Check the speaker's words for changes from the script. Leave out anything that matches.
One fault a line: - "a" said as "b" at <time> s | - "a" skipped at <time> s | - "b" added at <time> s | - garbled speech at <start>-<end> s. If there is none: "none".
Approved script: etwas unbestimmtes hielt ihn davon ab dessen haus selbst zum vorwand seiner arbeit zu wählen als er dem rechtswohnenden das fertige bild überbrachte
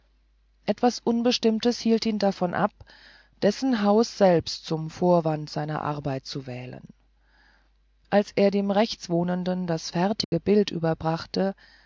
none